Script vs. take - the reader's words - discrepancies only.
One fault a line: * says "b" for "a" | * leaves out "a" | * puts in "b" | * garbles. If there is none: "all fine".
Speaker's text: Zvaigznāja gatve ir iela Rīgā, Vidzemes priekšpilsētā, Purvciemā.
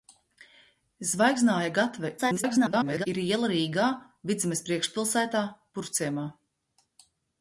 * garbles